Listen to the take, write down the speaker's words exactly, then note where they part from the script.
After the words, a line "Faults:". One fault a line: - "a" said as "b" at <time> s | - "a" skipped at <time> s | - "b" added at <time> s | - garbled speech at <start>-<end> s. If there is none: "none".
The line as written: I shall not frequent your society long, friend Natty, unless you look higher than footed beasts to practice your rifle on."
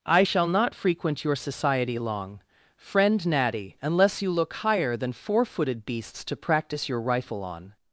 I shall not frequent your society long, friend Natty, unless you look higher than four footed beasts to practice your rifle on."
Faults:
- "four" added at 5.1 s